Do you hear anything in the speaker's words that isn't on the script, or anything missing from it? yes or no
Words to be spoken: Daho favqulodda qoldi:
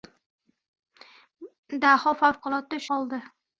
no